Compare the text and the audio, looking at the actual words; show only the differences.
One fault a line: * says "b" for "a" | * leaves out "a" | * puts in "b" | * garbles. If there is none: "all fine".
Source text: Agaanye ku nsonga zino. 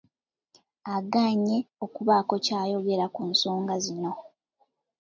* puts in "okubaako ky'ayogera"